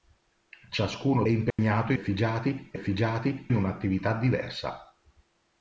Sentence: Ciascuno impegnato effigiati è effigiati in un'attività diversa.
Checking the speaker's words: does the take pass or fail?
pass